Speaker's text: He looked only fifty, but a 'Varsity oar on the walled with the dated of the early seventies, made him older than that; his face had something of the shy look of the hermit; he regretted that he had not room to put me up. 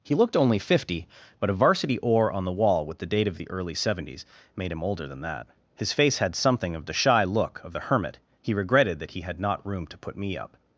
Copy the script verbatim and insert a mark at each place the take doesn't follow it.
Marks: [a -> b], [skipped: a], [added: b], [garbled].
He looked only fifty, but a 'Varsity oar on the [walled -> wall] with the [dated -> date] of the early seventies, made him older than that; his face had something of the shy look of the hermit; he regretted that he had not room to put me up.